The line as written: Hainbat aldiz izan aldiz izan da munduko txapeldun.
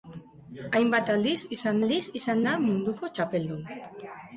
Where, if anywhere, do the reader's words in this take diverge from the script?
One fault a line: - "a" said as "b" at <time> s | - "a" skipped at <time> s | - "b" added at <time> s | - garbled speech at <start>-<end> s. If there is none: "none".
none